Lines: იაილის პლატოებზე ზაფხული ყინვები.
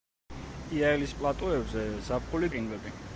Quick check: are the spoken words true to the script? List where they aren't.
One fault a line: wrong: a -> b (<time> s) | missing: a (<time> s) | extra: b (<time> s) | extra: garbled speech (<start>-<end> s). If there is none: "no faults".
no faults